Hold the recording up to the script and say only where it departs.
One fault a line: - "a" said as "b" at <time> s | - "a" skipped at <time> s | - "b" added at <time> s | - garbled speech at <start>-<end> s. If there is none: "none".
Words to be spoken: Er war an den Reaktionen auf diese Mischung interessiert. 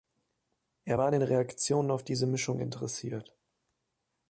none